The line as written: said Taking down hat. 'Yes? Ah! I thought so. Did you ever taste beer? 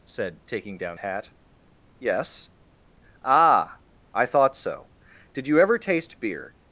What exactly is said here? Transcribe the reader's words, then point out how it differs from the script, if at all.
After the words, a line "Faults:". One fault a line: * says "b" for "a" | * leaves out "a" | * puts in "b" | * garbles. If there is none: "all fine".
said Taking down hat. 'Yes? Ah! I thought so. Did you ever taste beer?
Faults:
all fine